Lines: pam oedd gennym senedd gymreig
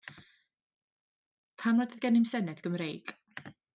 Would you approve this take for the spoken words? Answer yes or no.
no